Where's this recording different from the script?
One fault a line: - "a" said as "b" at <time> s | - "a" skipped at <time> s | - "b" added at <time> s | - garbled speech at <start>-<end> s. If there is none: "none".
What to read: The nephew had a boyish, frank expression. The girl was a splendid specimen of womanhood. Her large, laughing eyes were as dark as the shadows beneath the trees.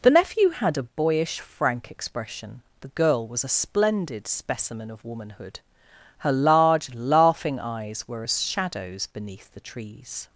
- "dark as the" skipped at 8.4 s